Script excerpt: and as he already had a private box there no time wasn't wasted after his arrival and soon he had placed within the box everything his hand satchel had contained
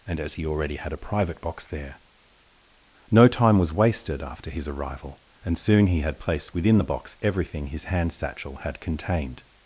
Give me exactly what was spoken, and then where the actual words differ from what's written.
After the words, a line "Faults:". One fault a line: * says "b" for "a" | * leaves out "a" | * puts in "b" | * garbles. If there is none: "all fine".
and as he already had a private box there no time was wasted after his arrival and soon he had placed within the box everything his hand satchel had contained
Faults:
* says "was" for "wasn't"